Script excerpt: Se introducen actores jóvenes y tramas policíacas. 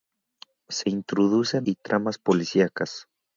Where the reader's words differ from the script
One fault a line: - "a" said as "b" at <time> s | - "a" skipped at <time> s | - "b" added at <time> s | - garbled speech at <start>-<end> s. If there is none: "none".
- "actores jóvenes" skipped at 1.7 s